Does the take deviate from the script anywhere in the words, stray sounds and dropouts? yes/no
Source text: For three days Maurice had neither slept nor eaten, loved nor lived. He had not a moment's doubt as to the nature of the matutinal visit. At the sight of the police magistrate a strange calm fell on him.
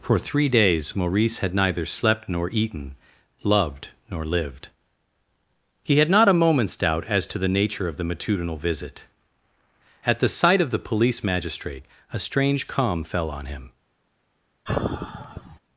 yes